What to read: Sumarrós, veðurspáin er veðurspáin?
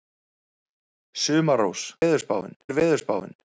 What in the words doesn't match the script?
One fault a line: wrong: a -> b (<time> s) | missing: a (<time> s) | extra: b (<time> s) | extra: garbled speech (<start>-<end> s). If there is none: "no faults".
no faults